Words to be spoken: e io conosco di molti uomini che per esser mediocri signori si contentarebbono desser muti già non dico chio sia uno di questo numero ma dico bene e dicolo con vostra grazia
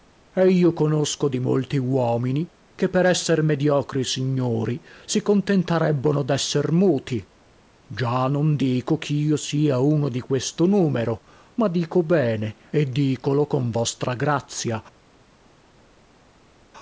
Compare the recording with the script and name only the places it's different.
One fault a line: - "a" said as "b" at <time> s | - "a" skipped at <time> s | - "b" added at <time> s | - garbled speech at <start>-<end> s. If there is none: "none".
none